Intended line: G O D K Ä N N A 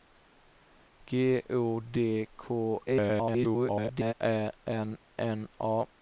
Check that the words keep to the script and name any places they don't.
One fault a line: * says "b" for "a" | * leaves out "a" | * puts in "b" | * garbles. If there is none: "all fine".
* garbles